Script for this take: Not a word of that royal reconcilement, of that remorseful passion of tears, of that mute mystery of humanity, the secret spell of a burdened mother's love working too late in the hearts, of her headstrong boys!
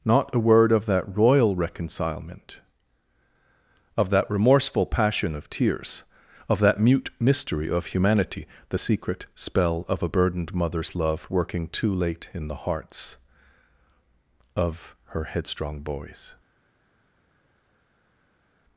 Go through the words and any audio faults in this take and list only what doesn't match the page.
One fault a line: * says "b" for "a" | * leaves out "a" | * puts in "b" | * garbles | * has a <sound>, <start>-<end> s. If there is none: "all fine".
all fine